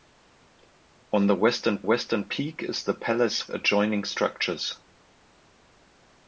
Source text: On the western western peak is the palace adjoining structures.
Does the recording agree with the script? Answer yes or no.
yes